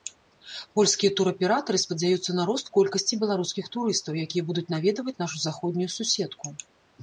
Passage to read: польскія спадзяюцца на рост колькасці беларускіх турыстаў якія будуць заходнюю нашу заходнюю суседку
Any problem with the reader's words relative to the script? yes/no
yes